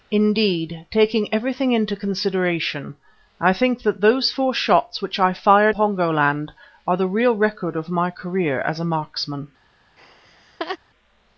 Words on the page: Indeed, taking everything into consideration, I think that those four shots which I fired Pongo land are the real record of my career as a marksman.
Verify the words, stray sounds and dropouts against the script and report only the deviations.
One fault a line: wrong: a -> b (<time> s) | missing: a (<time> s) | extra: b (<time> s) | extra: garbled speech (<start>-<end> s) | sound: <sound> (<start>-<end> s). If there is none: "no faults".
sound: laugh (10.0-10.8 s)